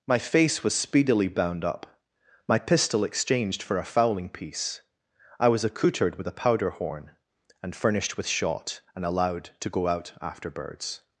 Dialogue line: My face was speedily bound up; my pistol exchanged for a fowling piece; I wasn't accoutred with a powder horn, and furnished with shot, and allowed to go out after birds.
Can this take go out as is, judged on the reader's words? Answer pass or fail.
fail